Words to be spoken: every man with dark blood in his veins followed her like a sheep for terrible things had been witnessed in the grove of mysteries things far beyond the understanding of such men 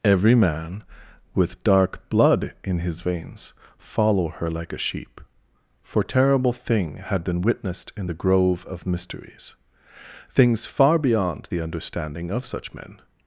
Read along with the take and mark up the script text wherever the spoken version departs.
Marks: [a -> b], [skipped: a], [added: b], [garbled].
every man with dark blood in his veins [followed -> follow] her like a sheep for terrible [things -> thing] had been witnessed in the grove of mysteries things far beyond the understanding of such men